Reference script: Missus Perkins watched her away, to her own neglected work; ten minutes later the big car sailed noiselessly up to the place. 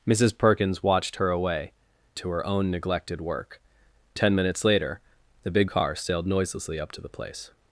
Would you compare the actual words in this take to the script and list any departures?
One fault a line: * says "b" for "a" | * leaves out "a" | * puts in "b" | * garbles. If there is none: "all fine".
all fine